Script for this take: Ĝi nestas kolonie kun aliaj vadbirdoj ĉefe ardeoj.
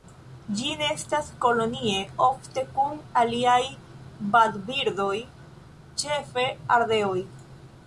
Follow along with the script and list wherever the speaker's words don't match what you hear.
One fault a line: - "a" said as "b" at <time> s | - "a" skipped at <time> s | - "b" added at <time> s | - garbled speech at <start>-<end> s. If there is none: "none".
- "ofte" added at 2.3 s